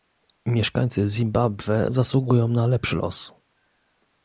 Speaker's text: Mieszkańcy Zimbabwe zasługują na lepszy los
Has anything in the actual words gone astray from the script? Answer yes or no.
no